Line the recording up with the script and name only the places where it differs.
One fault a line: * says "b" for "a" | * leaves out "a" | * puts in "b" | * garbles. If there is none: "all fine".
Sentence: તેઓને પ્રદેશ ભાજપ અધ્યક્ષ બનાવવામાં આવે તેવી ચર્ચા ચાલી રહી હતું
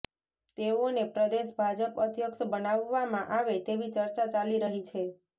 * says "છે" for "હતું"